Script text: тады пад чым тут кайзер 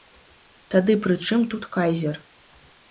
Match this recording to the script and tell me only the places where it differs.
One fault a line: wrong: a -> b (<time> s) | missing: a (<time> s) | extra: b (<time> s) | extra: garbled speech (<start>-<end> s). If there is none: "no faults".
wrong: пад -> пры (1.0 s)